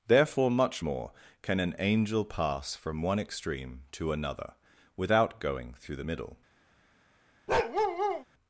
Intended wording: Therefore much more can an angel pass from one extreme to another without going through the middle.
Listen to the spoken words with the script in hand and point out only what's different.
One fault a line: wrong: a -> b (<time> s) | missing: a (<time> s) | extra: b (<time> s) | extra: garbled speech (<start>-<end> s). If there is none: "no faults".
no faults